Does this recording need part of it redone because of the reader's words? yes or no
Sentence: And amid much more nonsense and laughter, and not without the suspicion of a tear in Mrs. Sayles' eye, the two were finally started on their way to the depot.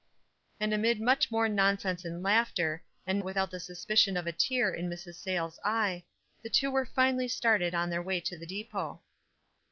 yes